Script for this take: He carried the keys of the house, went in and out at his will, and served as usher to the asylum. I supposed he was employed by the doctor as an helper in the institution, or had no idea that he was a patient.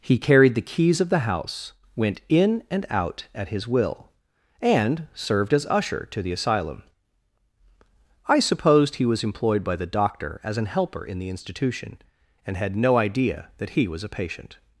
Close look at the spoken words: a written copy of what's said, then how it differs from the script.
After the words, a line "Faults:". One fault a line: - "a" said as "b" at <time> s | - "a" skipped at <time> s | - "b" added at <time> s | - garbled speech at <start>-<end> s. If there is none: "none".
He carried the keys of the house, went in and out at his will, and served as usher to the asylum. I supposed he was employed by the doctor as an helper in the institution, and had no idea that he was a patient.
Faults:
- "or" said as "and" at 12.4 s